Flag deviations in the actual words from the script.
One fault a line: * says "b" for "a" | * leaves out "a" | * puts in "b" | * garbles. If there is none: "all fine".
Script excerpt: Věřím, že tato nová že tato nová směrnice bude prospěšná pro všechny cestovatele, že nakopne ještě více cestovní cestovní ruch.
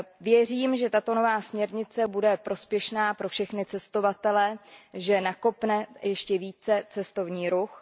* leaves out "že tato nová"
* leaves out "cestovní"